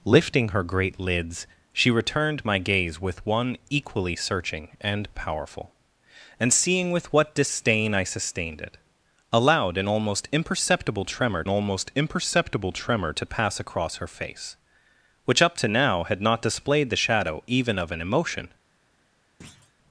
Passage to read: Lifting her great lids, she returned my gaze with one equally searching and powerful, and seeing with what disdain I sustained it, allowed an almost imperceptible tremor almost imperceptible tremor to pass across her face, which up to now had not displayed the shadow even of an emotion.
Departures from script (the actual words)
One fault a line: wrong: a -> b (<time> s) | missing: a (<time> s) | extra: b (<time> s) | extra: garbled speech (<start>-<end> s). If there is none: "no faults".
no faults